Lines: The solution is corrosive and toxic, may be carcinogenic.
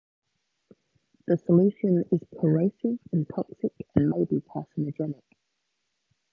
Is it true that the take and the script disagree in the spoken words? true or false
true